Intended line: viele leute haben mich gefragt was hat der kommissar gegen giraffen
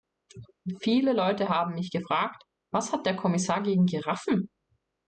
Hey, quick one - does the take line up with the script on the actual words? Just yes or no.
yes